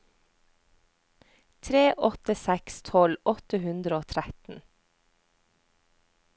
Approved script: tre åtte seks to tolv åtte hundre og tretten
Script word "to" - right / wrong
wrong